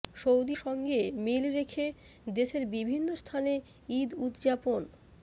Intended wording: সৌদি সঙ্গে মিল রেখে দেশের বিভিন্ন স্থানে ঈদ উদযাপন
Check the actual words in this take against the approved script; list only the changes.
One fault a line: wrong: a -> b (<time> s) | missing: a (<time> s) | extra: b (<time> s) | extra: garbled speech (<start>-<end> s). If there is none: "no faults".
no faults